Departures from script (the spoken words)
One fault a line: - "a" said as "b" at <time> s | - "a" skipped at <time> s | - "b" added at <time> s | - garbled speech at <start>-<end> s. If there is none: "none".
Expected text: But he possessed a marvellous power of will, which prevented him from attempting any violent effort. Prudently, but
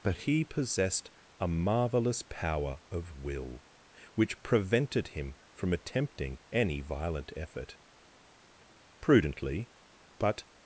none